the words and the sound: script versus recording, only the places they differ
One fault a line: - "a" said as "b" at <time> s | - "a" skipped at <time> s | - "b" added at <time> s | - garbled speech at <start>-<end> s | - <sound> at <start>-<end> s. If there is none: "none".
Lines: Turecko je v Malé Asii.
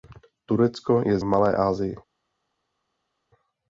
none